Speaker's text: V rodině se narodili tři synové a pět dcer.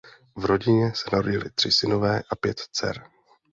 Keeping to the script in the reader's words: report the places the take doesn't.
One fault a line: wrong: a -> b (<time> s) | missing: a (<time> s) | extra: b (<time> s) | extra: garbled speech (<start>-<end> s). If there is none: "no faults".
no faults